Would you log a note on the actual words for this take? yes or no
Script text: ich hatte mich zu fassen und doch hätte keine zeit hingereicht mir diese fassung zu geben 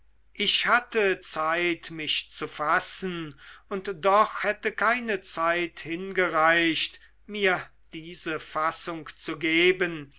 yes